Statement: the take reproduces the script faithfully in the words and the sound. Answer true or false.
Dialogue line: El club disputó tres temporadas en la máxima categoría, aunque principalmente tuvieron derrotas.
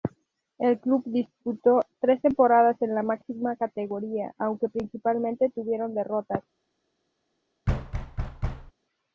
false